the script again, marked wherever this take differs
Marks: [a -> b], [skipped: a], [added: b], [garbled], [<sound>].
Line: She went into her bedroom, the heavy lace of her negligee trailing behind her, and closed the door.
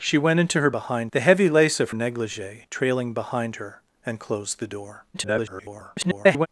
She went into her [bedroom, -> behind] the heavy lace of [skipped: her] negligee trailing behind her, and closed the door. [garbled]